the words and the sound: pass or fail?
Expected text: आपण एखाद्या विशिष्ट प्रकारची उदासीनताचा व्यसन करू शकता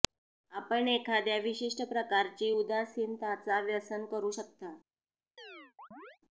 fail